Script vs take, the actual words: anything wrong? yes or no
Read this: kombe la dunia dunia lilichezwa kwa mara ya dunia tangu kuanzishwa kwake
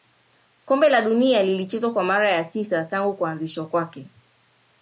yes